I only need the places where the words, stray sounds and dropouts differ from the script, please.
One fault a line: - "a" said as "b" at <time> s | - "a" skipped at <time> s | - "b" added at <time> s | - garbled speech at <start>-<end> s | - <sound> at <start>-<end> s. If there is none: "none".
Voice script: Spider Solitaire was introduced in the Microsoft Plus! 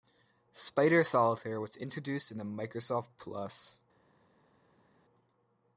none